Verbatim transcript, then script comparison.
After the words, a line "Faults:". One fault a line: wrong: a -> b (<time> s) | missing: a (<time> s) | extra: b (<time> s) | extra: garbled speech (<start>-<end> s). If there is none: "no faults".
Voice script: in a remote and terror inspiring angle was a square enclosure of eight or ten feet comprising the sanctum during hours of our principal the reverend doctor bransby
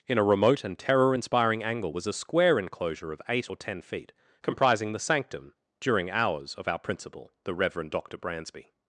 in a remote and terror inspiring angle was a square enclosure of eight or ten feet comprising the sanctum during hours of our principal the reverend doctor bransby
Faults:
no faults